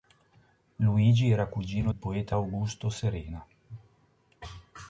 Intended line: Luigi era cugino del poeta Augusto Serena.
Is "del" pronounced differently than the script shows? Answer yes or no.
yes